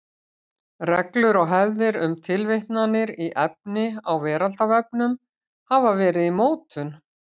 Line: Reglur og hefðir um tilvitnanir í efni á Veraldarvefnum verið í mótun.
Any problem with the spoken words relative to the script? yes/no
yes